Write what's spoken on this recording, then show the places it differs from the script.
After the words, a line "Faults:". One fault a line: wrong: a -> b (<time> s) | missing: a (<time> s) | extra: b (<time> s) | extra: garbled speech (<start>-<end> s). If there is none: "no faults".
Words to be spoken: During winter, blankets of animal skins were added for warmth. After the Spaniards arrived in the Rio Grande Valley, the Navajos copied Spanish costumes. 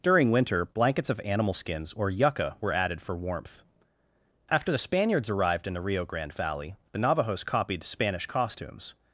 During winter, blankets of animal skins or yucca were added for warmth. After the Spaniards arrived in the Rio Grande Valley, the Navajos copied Spanish costumes.
Faults:
extra: or yucca (1.9 s)